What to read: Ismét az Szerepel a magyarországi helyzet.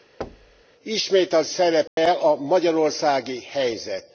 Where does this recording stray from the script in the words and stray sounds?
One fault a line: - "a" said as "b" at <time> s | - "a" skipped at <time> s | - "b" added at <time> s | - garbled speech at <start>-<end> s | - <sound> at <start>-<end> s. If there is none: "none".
- thud at 0.2-0.6 s
- dropout at 1.9-2.0 s